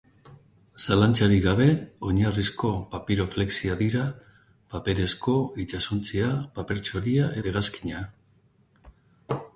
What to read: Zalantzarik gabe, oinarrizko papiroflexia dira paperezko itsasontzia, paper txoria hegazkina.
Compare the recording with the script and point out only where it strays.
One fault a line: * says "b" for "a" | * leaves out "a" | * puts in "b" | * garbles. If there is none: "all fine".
all fine